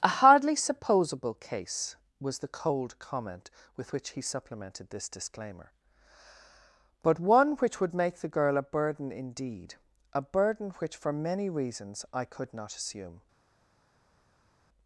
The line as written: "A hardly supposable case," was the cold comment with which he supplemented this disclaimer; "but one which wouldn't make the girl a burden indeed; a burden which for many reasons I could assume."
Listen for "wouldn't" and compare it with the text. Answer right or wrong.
wrong